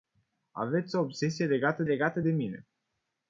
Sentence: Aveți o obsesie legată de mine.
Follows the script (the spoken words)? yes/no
no